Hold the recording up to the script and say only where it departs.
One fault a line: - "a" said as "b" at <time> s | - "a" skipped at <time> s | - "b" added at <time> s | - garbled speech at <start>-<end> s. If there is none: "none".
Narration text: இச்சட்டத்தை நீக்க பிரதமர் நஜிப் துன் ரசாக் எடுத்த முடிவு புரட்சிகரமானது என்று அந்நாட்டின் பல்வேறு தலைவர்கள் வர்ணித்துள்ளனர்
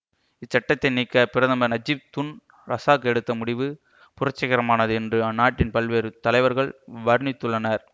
none